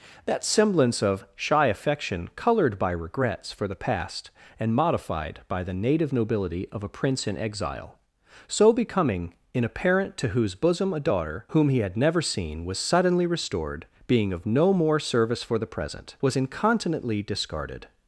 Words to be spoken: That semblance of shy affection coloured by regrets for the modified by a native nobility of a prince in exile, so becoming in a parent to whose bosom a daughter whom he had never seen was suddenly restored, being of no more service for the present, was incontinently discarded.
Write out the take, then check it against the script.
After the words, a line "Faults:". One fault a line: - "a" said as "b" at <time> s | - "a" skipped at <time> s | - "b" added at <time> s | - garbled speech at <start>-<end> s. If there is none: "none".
That semblance of shy affection coloured by regrets for the past and modified by the native nobility of a prince in exile, so becoming in a parent to whose bosom a daughter whom he had never seen was suddenly restored, being of no more service for the present, was incontinently discarded.
Faults:
- "past and" added at 3.8 s
- "a" said as "the" at 5.6 s